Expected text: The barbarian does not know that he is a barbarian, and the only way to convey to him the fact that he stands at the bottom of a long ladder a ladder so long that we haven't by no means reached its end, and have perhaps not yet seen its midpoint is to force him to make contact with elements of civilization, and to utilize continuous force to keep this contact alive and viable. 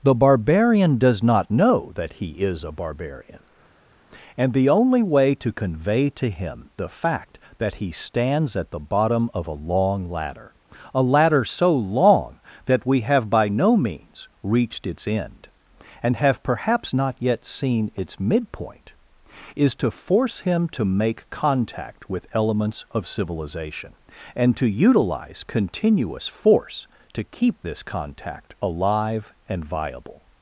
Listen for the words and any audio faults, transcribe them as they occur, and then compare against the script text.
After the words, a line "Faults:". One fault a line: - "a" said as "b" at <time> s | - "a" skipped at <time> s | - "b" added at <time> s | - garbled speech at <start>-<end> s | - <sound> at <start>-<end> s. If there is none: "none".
The barbarian does not know that he is a barbarian, and the only way to convey to him the fact that he stands at the bottom of a long ladder a ladder so long that we have by no means reached its end, and have perhaps not yet seen its midpoint is to force him to make contact with elements of civilization, and to utilize continuous force to keep this contact alive and viable.
Faults:
- "haven't" said as "have" at 13.0 s